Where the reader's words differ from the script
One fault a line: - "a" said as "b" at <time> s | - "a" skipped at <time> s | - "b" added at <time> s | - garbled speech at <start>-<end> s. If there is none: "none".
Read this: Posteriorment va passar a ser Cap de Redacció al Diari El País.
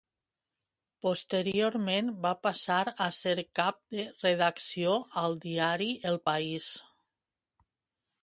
none